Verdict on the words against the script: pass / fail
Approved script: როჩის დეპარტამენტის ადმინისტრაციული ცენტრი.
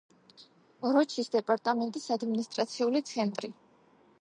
pass